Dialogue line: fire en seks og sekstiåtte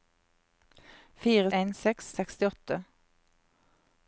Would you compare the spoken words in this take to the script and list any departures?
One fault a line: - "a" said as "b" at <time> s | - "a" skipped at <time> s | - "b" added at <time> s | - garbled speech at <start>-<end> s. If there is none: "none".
none